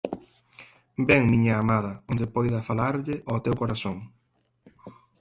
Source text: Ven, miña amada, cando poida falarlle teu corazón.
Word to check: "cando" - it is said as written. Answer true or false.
false